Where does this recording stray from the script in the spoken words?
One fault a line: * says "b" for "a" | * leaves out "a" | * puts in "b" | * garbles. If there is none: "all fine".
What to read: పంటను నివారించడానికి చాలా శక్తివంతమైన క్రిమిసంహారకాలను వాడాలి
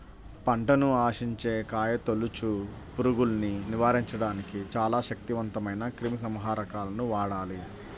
* puts in "ఆశించే కాయతొలుచు పురుగుల్ని"